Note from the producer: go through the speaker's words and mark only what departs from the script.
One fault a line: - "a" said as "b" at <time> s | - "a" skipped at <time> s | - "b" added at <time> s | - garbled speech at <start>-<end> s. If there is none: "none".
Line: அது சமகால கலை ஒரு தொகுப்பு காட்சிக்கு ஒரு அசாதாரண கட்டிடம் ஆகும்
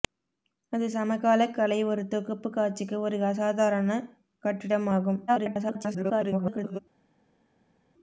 - garbled speech at 5.3-6.8 s